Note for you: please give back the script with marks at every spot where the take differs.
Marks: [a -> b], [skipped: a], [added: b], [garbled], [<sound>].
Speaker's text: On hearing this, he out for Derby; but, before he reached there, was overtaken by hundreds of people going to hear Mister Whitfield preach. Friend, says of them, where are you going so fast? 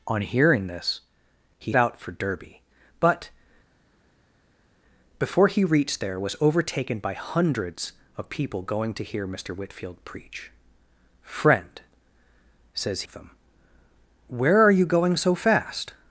On hearing this, he out for Derby; but, before he reached there, was overtaken by hundreds of people going to hear Mister Whitfield preach. Friend, says of them, where are you going so fast?